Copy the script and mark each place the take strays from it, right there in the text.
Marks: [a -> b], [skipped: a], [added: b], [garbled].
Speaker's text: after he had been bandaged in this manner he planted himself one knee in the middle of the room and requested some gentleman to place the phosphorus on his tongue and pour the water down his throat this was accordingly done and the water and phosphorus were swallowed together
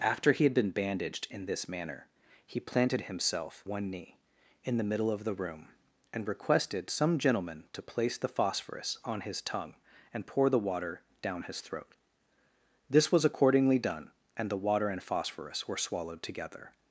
after he had been bandaged in this manner he planted himself one knee in the middle of the room and requested some gentleman to place the phosphorus on his tongue and pour the water down his throat this was accordingly done and the water and phosphorus were swallowed together